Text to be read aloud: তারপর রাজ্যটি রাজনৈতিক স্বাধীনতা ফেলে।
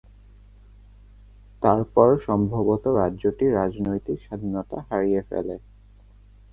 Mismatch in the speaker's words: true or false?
true